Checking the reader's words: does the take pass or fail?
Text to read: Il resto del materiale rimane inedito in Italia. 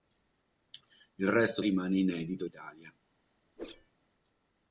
fail